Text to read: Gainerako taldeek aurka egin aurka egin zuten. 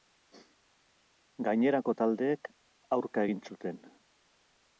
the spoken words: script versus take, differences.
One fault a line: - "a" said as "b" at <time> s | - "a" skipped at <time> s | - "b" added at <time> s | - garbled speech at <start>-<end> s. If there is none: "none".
- "aurka egin" skipped at 3.4 s